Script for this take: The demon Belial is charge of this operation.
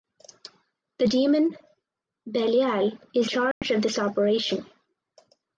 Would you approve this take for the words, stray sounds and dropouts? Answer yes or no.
no